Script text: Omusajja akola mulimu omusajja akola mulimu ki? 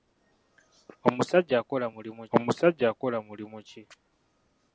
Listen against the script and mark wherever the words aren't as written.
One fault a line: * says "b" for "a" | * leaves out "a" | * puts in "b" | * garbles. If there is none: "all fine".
all fine